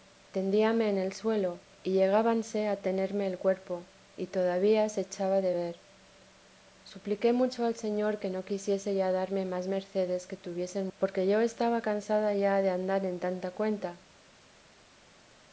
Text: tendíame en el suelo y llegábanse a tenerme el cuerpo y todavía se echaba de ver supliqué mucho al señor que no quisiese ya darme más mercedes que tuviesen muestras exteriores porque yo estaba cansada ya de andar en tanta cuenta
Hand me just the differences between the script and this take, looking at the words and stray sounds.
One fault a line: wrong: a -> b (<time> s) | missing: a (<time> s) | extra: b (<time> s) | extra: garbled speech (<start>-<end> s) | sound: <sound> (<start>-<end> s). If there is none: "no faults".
missing: muestras exteriores (10.9 s)